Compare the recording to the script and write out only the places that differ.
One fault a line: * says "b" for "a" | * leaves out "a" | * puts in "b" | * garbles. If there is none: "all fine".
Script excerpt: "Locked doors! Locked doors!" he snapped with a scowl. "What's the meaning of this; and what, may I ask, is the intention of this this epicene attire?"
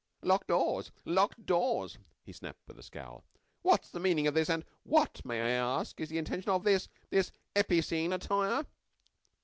all fine